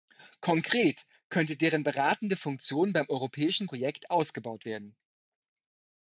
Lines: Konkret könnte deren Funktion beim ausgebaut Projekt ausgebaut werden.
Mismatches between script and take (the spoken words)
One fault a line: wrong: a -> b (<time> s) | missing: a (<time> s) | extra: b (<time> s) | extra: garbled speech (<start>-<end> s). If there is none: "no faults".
extra: beratende (1.8 s)
wrong: ausgebaut -> europäischen (3.1 s)